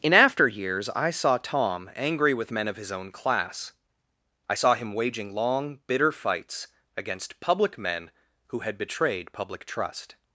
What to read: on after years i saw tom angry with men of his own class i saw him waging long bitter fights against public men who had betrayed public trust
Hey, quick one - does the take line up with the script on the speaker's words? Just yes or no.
no